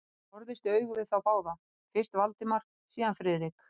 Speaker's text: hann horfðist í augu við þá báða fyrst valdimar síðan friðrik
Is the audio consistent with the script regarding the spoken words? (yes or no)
yes